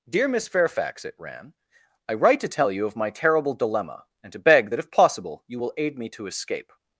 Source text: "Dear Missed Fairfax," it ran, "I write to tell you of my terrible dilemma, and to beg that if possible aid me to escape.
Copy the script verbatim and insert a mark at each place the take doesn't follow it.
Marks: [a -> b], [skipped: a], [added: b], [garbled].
"Dear [Missed -> Miss] Fairfax," it ran, "I write to tell you of my terrible dilemma, and to beg that if possible [added: you will] aid me to escape.